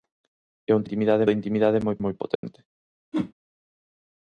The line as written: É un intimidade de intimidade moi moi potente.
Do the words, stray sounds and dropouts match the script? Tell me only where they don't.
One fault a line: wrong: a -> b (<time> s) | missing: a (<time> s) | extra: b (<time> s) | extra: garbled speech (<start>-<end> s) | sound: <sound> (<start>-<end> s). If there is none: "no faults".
sound: dropout (2.4-2.4 s)
sound: whoosh (3.1-3.3 s)